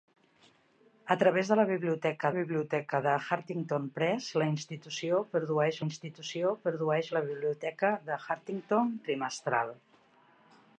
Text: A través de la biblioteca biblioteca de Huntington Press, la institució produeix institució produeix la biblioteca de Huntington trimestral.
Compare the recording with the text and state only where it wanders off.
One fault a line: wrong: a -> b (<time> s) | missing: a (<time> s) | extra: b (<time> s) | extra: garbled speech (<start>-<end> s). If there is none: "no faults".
no faults